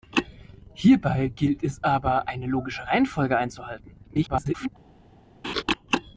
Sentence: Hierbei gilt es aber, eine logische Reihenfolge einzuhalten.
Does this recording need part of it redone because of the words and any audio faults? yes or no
yes